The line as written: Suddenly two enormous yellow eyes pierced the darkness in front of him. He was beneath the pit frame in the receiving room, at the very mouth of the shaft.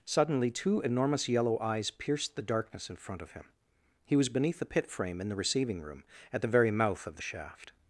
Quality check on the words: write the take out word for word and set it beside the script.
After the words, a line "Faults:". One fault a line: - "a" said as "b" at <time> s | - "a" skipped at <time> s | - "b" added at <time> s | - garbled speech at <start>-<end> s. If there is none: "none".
Suddenly two enormous yellow eyes pierced the darkness in front of him. He was beneath the pit frame in the receiving room, at the very mouth of the shaft.
Faults:
none